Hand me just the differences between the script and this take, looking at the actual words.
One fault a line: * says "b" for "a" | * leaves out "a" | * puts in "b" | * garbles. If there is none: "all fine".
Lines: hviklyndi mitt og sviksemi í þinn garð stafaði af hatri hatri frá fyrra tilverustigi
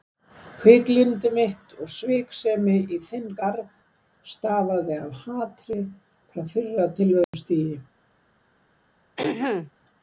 * leaves out "hatri"